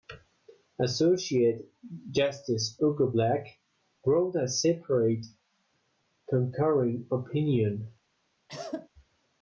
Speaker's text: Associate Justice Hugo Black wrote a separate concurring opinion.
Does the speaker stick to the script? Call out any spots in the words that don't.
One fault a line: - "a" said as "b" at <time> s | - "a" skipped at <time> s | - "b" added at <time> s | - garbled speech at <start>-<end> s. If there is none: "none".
none